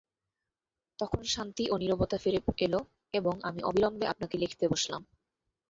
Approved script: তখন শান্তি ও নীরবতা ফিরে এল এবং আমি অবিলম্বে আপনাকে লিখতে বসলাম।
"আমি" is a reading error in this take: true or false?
false